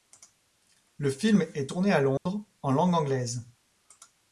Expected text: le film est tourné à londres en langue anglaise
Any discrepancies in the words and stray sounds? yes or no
yes